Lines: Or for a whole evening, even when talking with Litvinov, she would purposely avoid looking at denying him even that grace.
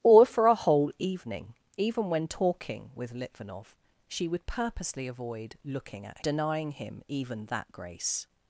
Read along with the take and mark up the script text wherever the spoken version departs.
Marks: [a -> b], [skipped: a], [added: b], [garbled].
Or for a whole evening, even when talking with Litvinov, she would purposely avoid looking at denying him even that grace.